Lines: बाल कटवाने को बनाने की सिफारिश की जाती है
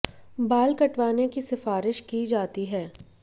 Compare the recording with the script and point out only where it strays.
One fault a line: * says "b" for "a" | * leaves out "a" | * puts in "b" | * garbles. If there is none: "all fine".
* leaves out "को बनाने"